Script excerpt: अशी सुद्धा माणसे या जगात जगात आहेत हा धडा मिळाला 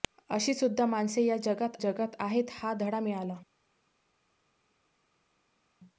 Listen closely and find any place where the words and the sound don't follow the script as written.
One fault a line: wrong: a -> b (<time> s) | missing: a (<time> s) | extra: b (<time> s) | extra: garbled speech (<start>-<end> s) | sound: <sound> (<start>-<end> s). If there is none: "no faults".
no faults